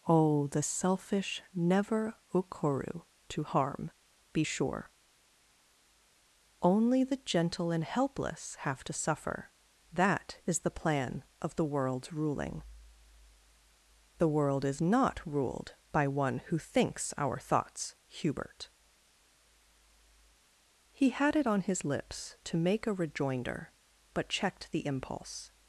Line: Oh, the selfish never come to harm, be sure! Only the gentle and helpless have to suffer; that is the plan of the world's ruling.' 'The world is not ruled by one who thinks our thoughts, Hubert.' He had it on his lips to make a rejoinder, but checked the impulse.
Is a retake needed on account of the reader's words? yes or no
yes